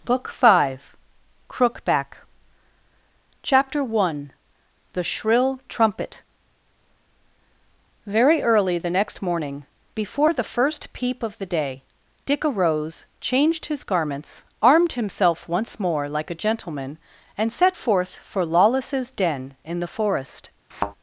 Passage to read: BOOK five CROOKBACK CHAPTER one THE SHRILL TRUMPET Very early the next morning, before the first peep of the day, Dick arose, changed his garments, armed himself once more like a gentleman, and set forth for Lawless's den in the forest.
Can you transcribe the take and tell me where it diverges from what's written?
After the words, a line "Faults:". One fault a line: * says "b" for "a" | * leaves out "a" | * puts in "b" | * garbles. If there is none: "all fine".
BOOK five CROOKBACK CHAPTER one THE SHRILL TRUMPET Very early the next morning, before the first peep of the day, Dick arose, changed his garments, armed himself once more like a gentleman, and set forth for Lawless's den in the forest.
Faults:
all fine